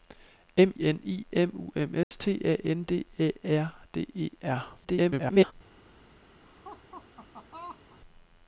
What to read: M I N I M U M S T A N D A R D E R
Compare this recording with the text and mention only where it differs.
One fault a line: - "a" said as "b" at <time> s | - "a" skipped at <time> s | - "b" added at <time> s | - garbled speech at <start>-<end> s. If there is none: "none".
- "I" skipped at 0.7 s
- garbled speech at 4.8-5.5 s